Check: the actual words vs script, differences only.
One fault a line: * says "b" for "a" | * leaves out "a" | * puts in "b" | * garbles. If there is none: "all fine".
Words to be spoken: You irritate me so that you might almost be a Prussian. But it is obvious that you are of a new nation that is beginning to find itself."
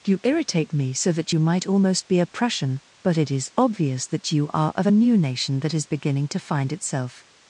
all fine